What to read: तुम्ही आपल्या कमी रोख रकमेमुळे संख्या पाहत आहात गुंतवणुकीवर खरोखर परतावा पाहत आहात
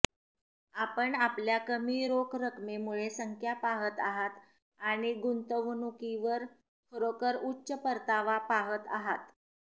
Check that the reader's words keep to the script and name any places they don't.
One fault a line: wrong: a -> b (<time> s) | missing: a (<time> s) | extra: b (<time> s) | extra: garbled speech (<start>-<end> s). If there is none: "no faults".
wrong: तुम्ही -> आपण (0.8 s)
extra: आणि (4.8 s)
extra: उच्च (7.4 s)